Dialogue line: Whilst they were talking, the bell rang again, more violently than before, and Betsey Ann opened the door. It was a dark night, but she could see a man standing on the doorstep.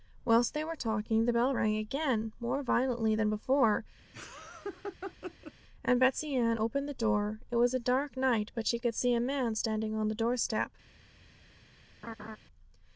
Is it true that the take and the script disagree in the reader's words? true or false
false